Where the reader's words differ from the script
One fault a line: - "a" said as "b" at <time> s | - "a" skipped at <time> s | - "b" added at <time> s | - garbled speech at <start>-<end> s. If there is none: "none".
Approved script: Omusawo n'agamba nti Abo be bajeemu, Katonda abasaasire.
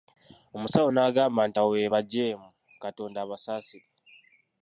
none